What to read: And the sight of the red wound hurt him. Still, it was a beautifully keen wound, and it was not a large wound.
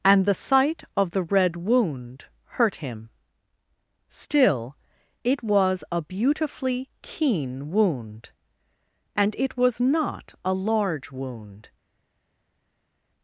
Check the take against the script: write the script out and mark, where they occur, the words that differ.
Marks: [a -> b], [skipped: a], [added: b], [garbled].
And the sight of the red wound hurt him. Still, it was a beautifully keen wound, and it was not a large wound.